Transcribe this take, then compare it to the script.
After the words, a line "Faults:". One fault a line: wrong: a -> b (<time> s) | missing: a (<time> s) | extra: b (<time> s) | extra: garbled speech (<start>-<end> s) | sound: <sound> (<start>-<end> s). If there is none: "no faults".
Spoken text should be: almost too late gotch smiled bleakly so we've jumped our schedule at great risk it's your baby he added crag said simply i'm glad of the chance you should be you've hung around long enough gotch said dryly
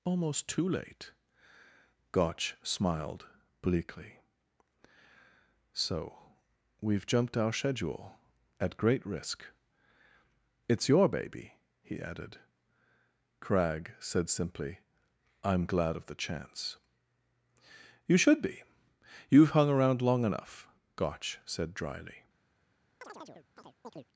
almost too late gotch smiled bleakly so we've jumped our schedule at great risk it's your baby he added crag said simply i'm glad of the chance you should be you've hung around long enough gotch said dryly
Faults:
sound: chirp (23.0-24.1 s)